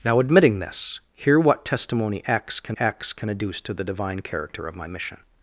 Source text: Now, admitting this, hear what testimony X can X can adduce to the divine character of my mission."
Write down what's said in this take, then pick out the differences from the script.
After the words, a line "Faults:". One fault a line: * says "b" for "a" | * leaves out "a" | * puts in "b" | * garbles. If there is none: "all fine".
Now, admitting this, hear what testimony X can X can adduce to the divine character of my mission."
Faults:
all fine